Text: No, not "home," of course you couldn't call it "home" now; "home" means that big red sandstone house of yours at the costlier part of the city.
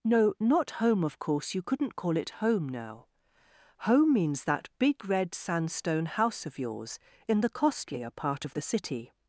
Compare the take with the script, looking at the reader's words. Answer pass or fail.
fail